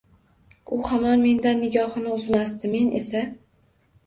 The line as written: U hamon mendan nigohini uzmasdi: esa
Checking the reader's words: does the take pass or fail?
fail